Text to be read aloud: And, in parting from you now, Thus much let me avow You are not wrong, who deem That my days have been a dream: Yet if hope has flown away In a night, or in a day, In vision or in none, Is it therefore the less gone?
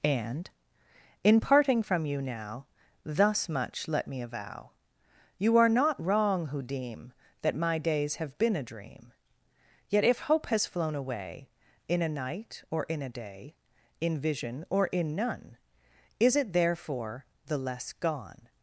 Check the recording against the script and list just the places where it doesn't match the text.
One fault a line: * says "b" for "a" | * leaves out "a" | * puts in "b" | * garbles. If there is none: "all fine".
all fine